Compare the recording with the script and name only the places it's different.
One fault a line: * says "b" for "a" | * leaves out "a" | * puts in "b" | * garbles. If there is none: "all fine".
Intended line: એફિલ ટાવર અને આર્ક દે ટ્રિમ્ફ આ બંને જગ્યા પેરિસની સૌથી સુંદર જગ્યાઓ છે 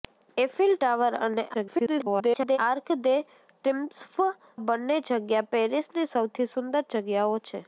* garbles
* leaves out "આ"